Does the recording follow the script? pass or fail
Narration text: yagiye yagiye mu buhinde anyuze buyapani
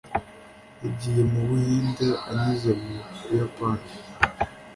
fail